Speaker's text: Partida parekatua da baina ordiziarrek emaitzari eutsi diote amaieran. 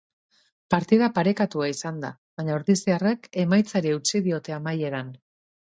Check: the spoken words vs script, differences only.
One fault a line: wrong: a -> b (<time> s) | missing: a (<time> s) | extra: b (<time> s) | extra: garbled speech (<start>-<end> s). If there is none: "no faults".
extra: izan (1.7 s)